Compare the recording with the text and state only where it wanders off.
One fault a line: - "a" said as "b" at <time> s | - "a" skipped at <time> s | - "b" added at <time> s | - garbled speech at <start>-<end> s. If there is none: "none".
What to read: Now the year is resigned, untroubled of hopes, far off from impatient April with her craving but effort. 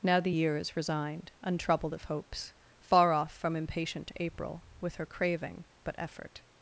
none